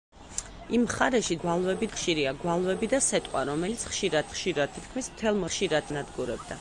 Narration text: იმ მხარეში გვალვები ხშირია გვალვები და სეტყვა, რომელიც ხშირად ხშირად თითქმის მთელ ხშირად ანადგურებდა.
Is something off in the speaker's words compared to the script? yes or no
no